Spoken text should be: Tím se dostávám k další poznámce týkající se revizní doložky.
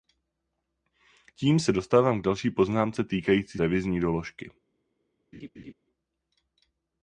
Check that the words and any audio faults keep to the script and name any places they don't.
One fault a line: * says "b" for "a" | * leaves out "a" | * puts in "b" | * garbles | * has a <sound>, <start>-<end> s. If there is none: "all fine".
* leaves out "se"
* has a laugh, 5.3-5.7 s